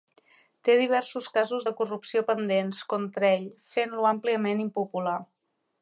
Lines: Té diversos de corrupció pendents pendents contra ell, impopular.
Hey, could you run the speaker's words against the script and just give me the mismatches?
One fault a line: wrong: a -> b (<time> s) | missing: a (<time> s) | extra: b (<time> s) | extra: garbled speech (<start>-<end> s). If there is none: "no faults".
extra: casos (1.4 s)
missing: pendents (2.8 s)
extra: fent lo àmpliament (3.7 s)